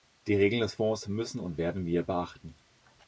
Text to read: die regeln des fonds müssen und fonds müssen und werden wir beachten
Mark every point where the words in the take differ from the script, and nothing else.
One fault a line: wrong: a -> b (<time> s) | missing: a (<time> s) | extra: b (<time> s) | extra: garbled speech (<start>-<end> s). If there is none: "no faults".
missing: fonds müssen und (1.6 s)